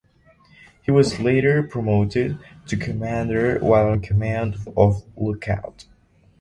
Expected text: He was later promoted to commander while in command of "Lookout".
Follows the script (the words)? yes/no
yes